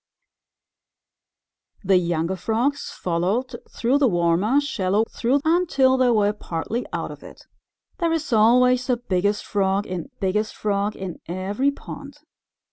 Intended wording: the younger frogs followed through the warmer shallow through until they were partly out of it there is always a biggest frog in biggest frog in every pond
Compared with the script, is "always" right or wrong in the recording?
right